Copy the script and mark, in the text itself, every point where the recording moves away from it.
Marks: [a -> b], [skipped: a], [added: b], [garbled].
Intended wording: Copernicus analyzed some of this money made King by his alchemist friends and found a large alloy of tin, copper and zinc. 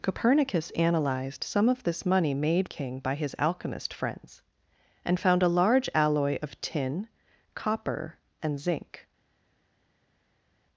Copernicus analyzed some of this money made King by his alchemist friends and found a large alloy of tin, copper and zinc.